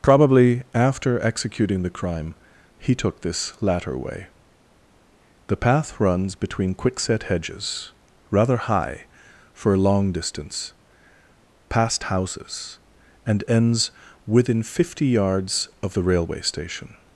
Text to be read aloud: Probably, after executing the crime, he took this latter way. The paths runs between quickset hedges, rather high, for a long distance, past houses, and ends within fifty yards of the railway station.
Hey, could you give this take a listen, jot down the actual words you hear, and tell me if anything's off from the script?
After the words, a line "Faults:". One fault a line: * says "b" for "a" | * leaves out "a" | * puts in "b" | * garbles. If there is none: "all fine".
Probably, after executing the crime, he took this latter way. The path runs between quickset hedges, rather high, for a long distance, past houses, and ends within fifty yards of the railway station.
Faults:
* says "path" for "paths"